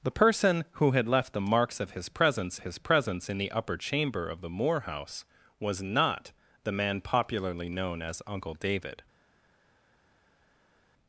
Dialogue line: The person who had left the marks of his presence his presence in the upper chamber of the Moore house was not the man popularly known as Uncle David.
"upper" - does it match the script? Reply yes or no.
yes